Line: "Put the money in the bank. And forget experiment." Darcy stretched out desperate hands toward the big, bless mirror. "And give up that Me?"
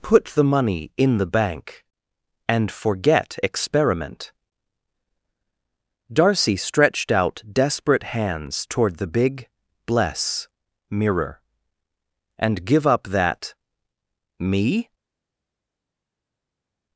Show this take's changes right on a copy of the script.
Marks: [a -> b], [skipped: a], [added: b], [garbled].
"Put the money in the bank. And forget experiment." Darcy stretched out desperate hands toward the big, bless mirror. "And give up that Me?"